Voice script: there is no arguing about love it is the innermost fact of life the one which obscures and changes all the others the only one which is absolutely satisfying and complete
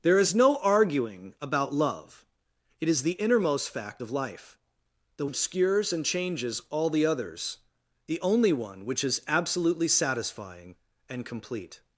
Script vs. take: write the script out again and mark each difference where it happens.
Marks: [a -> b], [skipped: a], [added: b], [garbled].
there is no arguing about love it is the innermost fact of life the [skipped: one which] obscures and changes all the others the only one which is absolutely satisfying and complete